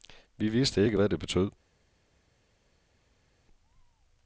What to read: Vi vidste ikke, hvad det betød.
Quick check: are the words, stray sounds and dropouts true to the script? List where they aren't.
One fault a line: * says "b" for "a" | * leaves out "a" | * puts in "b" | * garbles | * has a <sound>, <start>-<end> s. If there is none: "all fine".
all fine